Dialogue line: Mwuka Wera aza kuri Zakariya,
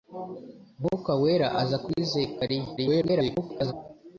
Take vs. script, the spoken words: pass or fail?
fail